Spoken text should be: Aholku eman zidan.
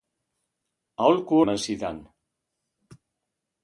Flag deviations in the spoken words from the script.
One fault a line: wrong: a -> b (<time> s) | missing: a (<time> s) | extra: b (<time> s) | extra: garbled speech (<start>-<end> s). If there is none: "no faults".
no faults